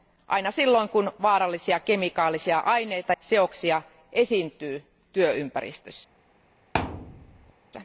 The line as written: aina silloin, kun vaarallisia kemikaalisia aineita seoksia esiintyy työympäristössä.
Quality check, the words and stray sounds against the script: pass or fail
fail